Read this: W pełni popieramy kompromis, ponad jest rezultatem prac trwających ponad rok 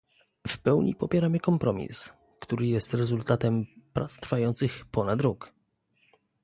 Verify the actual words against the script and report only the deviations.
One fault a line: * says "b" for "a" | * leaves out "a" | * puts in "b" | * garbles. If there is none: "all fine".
* says "który" for "ponad"